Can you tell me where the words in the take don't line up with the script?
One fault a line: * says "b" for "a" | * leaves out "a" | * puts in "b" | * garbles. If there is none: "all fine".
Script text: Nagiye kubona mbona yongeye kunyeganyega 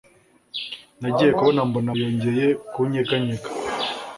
all fine